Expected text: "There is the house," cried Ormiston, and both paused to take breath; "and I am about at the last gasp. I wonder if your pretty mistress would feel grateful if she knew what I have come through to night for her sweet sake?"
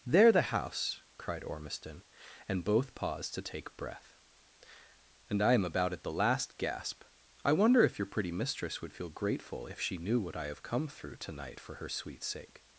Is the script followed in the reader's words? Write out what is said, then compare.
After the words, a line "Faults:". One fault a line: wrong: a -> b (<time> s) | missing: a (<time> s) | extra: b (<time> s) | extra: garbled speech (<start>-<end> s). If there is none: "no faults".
"There the house," cried Ormiston, and both paused to take breath; "and I am about at the last gasp. I wonder if your pretty mistress would feel grateful if she knew what I have come through to night for her sweet sake?"
Faults:
missing: is (0.3 s)